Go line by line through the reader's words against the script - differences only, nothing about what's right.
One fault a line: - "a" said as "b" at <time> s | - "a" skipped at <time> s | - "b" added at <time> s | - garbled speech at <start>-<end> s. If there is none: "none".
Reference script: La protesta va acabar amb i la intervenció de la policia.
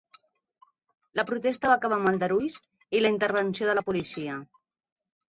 - "aldarulls" added at 2.1 s